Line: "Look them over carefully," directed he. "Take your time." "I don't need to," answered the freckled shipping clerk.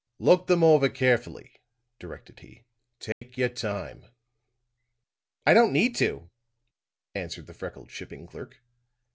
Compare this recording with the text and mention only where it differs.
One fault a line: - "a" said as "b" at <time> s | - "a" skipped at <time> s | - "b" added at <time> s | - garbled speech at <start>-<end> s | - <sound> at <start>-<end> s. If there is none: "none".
- dropout at 3.1-3.2 s